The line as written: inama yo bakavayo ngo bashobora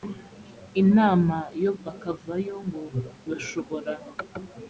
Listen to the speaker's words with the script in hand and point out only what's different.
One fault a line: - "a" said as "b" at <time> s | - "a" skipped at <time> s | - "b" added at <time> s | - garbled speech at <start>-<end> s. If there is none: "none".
none